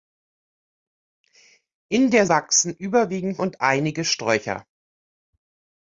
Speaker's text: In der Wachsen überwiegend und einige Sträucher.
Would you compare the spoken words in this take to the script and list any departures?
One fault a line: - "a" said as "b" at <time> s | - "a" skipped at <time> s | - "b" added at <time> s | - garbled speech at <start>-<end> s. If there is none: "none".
none